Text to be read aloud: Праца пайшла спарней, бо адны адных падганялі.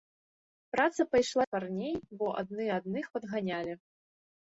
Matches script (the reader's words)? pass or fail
pass